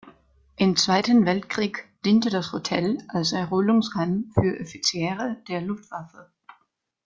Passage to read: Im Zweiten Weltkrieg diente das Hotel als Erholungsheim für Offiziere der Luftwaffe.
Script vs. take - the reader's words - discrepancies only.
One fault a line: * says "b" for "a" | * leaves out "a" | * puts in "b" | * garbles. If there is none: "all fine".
all fine